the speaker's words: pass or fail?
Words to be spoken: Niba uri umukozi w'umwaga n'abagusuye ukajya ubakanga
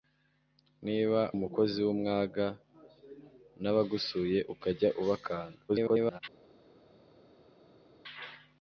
fail